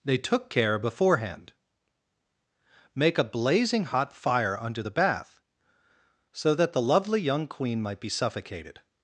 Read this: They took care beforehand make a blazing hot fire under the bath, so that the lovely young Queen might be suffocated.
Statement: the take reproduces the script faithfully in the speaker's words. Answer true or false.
true